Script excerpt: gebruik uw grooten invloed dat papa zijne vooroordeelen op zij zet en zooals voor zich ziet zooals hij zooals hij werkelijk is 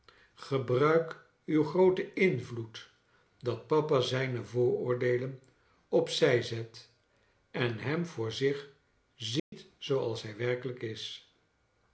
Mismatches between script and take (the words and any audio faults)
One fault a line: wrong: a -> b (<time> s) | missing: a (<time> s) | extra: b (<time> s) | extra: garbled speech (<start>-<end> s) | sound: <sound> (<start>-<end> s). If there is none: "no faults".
wrong: zooals -> hem (7.8 s)
sound: dropout (9.4-9.5 s)
missing: zooals hij (10.3 s)